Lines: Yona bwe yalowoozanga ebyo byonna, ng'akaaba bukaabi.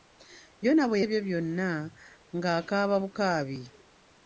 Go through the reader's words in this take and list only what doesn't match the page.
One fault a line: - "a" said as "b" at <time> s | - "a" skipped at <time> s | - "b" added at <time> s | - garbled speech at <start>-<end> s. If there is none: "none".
- "yalowoozanga" skipped at 1.0 s